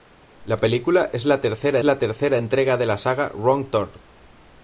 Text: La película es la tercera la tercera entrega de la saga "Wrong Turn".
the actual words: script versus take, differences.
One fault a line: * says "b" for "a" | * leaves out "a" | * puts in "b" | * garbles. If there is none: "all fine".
all fine